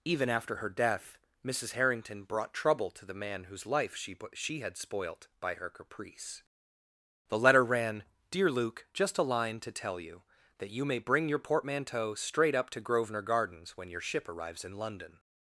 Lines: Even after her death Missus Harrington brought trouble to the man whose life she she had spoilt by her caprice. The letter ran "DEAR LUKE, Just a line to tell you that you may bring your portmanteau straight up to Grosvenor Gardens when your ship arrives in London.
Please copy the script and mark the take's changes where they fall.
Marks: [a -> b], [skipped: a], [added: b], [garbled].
Even after her death Missus Harrington brought trouble to the man whose life she she had spoilt by her caprice. The letter ran "DEAR LUKE, Just a line to tell you that you may bring your portmanteau straight up to Grosvenor Gardens when your ship arrives in London.